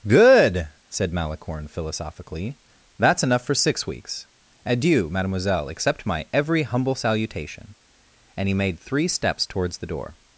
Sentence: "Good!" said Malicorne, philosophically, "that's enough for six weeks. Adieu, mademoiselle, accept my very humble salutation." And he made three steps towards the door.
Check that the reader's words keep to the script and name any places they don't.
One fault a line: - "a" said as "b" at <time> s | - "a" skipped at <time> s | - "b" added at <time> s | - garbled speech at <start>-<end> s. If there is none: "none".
- "very" said as "every" at 6.3 s